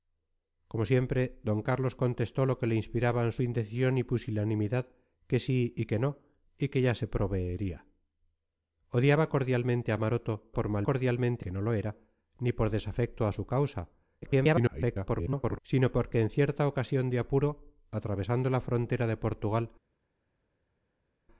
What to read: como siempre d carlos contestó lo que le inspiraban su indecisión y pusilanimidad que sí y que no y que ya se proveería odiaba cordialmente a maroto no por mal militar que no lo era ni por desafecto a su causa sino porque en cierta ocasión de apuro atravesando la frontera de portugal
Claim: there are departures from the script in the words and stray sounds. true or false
true